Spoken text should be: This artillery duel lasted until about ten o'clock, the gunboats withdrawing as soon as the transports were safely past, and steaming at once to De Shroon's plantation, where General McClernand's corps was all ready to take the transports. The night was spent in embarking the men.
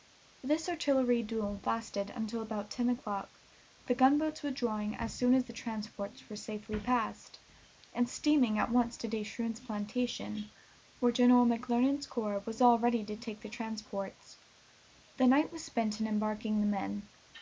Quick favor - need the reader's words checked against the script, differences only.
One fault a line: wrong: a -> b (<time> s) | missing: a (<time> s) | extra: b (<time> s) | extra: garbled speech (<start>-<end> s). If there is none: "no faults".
no faults